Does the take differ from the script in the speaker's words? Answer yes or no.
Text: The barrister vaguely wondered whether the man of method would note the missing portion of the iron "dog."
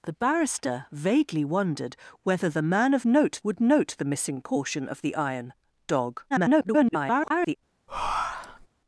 yes